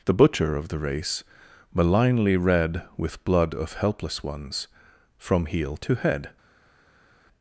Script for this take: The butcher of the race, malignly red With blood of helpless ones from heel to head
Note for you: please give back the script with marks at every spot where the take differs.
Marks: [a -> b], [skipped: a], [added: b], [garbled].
The butcher of the race, malignly red With blood of helpless ones from heel to head